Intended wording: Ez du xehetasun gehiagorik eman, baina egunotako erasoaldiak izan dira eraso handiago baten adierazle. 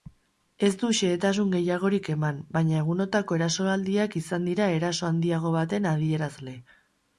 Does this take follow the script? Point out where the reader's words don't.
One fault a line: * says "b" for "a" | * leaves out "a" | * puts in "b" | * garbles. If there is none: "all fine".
all fine